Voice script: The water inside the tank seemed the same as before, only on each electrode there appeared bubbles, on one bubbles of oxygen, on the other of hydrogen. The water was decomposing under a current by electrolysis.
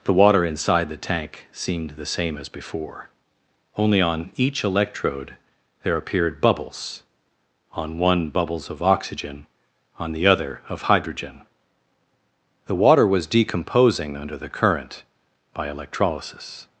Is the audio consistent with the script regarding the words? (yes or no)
no